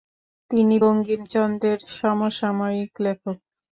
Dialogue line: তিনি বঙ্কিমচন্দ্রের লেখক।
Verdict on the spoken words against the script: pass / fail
fail